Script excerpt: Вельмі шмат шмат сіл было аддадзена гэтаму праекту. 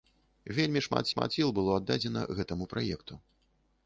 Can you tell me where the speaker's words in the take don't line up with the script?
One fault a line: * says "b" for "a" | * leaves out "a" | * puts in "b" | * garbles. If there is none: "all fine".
all fine